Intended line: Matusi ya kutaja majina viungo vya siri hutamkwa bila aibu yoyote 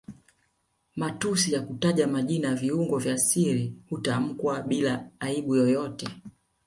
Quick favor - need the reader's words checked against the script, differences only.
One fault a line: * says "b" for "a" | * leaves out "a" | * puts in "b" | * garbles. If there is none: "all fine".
all fine